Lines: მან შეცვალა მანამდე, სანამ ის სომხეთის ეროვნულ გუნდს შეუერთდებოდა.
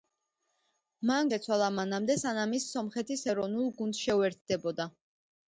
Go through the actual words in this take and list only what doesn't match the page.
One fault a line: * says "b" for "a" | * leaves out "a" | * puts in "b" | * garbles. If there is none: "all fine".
all fine